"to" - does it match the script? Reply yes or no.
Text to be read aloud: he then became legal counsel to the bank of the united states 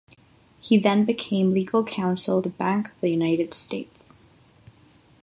no